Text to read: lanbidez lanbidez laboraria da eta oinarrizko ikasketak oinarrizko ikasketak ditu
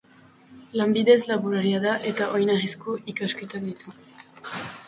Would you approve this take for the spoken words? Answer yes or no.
no